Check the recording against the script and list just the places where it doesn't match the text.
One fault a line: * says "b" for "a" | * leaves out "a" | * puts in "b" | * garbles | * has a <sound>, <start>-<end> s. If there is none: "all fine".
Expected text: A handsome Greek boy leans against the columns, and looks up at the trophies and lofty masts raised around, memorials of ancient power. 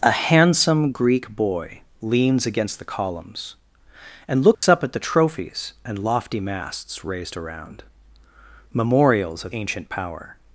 * has a dropout, 4.5-4.6 s